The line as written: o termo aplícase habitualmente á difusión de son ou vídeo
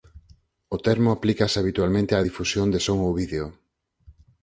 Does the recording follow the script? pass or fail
pass